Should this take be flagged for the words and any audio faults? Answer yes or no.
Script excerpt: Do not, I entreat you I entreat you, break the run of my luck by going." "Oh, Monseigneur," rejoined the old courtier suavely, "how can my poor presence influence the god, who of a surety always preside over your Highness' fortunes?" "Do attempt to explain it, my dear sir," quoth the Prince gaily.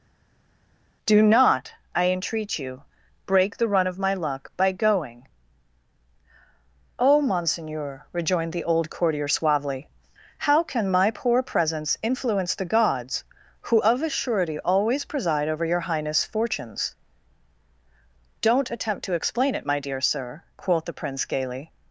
yes